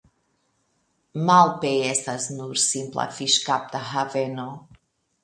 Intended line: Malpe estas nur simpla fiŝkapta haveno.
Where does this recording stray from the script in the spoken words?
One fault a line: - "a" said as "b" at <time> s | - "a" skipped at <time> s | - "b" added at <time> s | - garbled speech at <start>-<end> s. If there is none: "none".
none